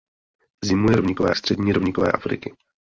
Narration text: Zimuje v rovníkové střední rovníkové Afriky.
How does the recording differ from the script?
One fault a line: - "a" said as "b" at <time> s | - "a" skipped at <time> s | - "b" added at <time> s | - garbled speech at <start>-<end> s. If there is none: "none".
none